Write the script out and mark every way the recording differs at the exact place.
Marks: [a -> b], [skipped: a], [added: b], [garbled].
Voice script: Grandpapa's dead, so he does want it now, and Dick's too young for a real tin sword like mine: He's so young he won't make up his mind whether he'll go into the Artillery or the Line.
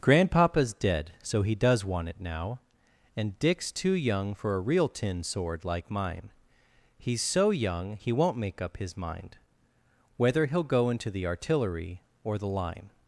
Grandpapa's dead, so he does want it now, and Dick's too young for a real tin sword like mine: He's so young he won't make up his mind whether he'll go into the Artillery or the Line.